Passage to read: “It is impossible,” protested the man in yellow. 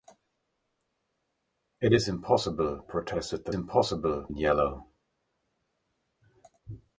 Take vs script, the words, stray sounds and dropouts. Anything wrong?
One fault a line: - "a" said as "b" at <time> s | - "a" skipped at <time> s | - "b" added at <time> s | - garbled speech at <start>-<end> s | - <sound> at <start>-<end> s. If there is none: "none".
- "man" said as "impossible" at 3.5 s